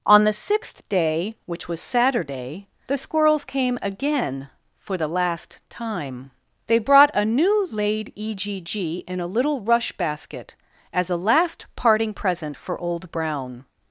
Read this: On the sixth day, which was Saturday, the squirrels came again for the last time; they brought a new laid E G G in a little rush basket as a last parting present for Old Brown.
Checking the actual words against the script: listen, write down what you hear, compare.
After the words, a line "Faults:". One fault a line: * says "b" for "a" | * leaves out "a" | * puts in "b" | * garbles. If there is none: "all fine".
On the sixth day, which was Saturday, the squirrels came again for the last time; they brought a new laid E G G in a little rush basket as a last parting present for Old Brown.
Faults:
all fine